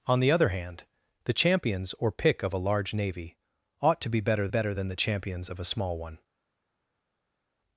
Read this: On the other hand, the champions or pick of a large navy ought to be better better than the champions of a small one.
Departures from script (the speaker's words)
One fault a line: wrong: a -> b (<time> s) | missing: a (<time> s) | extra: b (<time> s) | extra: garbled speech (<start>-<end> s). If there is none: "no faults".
no faults